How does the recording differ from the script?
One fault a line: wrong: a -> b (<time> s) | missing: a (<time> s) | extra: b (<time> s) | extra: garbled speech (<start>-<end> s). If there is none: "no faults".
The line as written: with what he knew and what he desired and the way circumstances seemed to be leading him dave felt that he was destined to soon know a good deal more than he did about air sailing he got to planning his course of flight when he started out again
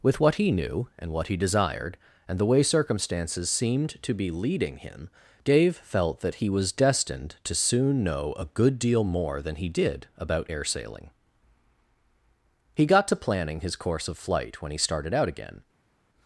no faults